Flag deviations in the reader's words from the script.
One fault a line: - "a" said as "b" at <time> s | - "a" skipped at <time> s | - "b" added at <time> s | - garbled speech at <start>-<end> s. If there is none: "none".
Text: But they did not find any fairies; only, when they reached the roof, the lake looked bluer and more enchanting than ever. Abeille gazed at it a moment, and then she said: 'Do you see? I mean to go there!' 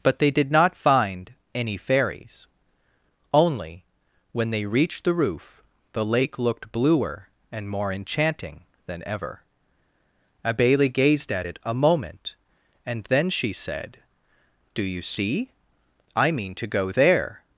none